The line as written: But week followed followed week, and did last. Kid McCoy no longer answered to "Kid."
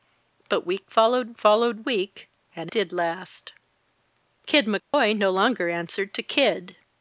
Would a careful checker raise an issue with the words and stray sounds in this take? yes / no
yes